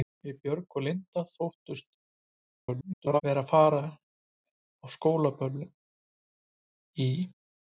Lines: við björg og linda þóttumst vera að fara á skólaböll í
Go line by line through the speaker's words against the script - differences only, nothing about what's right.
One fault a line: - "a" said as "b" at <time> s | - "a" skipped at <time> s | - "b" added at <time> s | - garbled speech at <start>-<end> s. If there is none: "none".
- garbled speech at 2.6-3.2 s